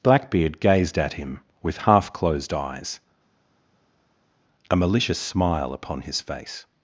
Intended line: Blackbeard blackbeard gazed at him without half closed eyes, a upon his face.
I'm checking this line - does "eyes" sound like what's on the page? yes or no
yes